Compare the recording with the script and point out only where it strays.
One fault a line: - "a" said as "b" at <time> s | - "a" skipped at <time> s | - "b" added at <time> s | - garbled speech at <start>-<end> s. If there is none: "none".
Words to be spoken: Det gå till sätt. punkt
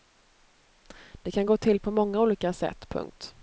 - "kan" added at 1.3 s
- "på många olika" added at 1.8 s